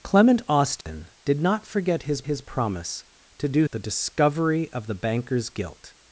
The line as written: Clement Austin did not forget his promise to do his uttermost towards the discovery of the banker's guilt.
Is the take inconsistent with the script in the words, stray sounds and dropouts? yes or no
yes